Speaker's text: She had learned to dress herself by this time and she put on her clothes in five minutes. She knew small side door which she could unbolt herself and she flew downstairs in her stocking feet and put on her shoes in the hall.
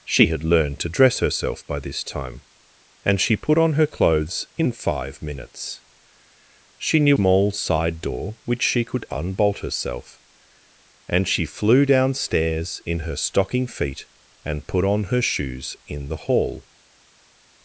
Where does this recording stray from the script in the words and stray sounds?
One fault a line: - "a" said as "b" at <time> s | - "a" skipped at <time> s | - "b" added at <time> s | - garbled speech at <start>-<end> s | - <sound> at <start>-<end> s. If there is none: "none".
none